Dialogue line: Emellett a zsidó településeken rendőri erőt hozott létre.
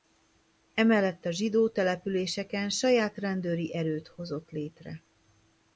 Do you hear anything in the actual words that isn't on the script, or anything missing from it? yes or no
yes